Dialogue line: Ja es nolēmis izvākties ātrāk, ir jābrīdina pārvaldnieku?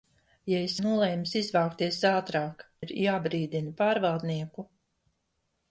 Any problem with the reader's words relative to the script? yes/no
no